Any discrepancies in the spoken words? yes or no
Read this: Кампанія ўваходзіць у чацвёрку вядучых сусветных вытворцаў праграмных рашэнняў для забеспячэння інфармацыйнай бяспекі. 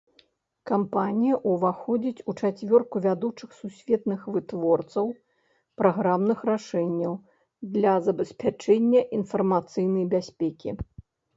no